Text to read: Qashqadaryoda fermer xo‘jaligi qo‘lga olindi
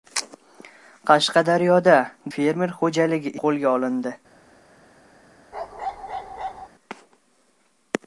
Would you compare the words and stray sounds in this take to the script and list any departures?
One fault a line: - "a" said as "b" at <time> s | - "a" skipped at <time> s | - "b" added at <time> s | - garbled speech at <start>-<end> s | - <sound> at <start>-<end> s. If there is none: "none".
- bark at 5.5-6.7 s